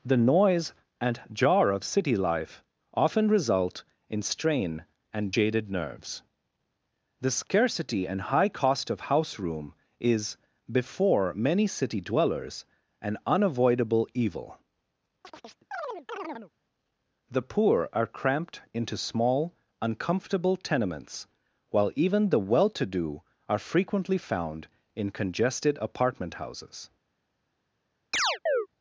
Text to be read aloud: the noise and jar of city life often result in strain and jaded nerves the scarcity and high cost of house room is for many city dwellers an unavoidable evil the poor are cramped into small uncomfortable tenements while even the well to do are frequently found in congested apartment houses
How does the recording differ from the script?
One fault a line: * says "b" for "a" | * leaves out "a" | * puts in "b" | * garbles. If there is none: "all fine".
* says "before" for "for"